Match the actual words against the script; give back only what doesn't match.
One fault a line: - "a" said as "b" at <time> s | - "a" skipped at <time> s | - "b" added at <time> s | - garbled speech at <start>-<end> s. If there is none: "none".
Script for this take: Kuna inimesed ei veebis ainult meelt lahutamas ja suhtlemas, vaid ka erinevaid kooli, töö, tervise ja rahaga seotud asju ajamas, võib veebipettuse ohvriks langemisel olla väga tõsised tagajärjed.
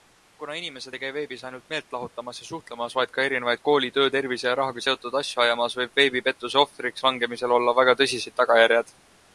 - "käi" added at 1.0 s